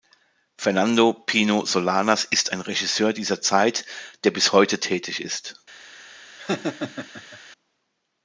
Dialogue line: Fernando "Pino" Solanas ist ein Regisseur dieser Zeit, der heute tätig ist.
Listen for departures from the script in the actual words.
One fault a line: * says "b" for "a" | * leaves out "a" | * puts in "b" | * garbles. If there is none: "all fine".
* puts in "bis"